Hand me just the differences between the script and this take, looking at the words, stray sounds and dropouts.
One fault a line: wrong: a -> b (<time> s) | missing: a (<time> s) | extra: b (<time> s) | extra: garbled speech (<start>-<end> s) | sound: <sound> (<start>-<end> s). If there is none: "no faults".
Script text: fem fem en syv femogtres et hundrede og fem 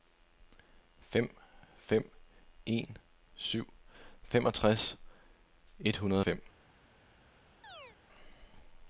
sound: chirp (7.6-8.0 s)